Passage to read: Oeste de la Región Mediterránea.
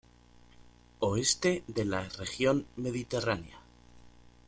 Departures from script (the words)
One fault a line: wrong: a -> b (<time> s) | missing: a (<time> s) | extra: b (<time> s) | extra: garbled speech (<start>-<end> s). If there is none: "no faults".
no faults